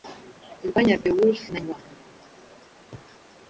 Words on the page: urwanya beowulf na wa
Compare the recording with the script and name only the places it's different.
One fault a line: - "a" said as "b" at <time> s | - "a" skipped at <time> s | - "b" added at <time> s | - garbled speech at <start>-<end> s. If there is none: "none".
none